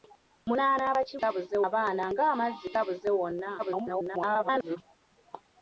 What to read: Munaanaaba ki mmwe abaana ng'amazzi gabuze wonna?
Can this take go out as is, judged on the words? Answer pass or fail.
fail